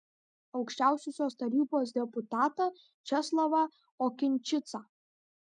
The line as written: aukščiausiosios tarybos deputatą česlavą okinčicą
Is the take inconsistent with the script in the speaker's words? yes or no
no